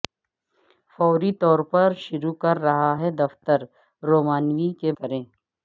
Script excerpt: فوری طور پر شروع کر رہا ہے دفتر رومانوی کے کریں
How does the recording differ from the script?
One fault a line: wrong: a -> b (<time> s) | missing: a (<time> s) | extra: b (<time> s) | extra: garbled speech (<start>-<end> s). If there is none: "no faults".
no faults